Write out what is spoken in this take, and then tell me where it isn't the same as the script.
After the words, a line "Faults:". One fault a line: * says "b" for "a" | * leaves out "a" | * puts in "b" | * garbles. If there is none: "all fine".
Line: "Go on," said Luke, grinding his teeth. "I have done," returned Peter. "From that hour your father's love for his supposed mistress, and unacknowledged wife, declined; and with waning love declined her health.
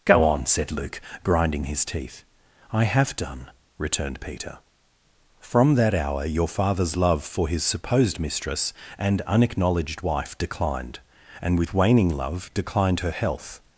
"Go on," said Luke, grinding his teeth. "I have done," returned Peter. "From that hour your father's love for his supposed mistress, and unacknowledged wife, declined; and with waning love declined her health.
Faults:
all fine